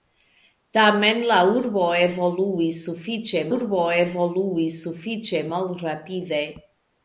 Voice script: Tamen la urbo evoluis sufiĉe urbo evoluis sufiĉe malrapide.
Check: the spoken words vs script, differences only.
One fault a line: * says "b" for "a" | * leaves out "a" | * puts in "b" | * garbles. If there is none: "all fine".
all fine